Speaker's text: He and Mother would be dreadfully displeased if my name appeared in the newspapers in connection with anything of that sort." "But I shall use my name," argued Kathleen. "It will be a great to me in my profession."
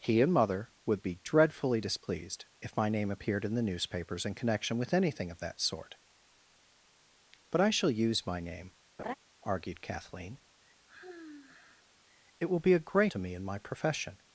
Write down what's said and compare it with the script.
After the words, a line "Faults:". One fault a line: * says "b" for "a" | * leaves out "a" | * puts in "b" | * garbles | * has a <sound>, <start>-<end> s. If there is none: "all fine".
He and Mother would be dreadfully displeased if my name appeared in the newspapers in connection with anything of that sort." "But I shall use my name," argued Kathleen. "It will be a great to me in my profession."
Faults:
* has a laugh, 9.0-9.1 s
* has a sigh, 10.9-11.9 s